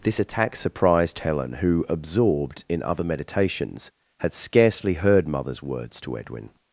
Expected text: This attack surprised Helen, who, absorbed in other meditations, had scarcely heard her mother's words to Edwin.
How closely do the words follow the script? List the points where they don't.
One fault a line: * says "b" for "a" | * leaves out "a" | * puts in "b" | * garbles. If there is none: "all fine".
* leaves out "her"